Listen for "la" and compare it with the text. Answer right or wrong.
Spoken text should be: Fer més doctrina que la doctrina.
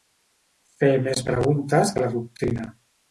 right